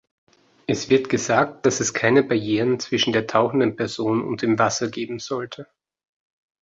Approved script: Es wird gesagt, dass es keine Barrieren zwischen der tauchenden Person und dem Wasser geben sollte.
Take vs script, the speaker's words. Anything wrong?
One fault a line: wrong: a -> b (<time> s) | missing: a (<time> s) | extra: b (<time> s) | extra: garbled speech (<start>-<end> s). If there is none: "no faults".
no faults